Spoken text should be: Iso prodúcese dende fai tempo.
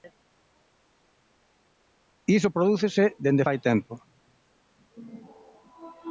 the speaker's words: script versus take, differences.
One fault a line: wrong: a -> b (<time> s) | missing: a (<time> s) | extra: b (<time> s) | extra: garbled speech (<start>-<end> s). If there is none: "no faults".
no faults